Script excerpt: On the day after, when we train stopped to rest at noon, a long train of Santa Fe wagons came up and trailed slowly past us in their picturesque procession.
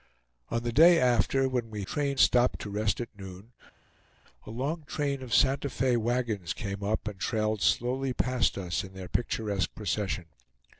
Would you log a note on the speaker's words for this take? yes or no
no